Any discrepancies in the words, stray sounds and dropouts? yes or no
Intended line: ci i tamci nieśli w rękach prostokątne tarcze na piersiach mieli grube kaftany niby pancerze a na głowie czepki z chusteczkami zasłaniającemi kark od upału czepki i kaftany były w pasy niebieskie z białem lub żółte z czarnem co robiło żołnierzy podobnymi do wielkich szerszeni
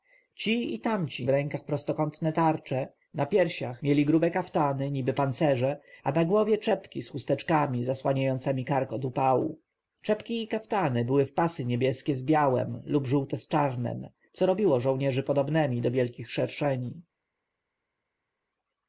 yes